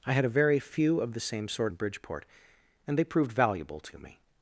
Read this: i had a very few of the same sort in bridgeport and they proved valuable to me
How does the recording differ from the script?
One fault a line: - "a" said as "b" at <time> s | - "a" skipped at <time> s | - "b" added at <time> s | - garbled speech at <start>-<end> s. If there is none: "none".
none